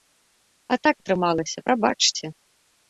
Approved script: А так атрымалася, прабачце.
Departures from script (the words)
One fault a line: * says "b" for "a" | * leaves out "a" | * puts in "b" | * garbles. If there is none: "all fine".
all fine